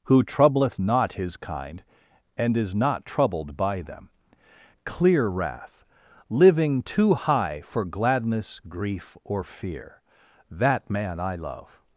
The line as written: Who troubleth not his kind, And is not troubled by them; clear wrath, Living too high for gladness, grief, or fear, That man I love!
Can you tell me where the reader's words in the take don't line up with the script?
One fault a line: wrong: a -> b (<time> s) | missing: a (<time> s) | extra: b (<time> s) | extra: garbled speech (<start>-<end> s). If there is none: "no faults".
no faults